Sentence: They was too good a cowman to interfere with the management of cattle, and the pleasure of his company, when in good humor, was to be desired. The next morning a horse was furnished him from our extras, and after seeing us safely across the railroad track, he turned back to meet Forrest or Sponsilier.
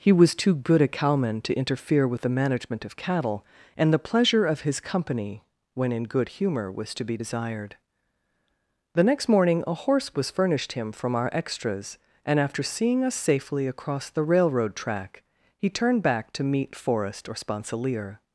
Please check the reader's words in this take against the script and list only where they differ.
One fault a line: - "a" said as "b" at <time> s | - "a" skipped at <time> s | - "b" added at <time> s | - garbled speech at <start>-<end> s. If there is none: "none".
- "They" said as "He" at 0.0 s